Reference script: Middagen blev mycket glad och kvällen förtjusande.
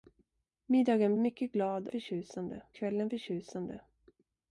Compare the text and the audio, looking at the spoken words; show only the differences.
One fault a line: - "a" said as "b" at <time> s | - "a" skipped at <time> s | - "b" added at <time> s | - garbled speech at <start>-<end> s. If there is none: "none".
- "blev" skipped at 1.1 s
- "och" said as "förtjusande" at 1.9 s